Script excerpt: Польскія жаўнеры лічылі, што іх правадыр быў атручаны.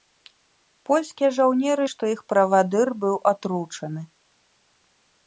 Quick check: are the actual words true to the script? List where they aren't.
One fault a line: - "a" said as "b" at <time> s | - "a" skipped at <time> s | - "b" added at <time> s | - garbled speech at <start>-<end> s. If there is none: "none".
- "лічылі" skipped at 1.9 s